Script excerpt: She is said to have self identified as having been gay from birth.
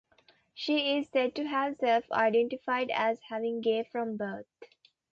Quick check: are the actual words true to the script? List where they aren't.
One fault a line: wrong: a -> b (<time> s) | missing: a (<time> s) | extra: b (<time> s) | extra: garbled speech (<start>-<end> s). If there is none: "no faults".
missing: been (3.6 s)